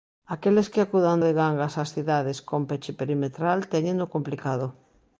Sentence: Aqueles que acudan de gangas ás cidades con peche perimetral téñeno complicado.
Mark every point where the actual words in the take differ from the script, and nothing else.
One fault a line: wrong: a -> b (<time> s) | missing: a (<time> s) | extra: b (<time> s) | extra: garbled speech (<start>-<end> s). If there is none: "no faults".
no faults